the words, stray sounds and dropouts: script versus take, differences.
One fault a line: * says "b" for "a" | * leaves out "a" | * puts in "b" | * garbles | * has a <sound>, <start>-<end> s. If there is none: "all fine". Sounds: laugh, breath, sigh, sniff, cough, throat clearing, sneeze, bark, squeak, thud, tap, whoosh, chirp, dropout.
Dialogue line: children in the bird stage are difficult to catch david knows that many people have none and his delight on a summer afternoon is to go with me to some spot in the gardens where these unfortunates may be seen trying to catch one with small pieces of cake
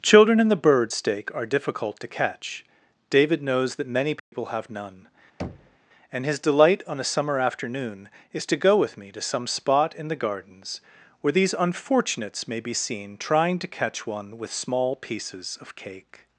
* says "stake" for "stage"
* has a dropout, 4.2-4.3 s
* has a thud, 5.4-5.8 s